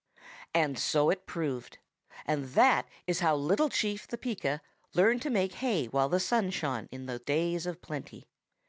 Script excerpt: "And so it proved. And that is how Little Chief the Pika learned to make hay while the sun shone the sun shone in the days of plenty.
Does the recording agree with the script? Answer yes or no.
no